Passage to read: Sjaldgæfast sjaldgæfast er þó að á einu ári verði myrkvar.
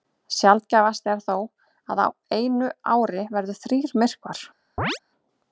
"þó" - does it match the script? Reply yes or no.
yes